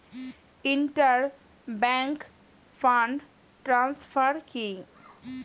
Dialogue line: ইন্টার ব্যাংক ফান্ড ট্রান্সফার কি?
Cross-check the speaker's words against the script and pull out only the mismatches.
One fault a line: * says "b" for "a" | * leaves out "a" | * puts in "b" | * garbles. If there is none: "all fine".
all fine